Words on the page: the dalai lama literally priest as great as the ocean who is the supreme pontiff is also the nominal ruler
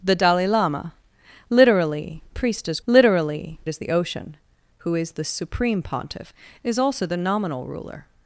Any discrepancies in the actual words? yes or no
yes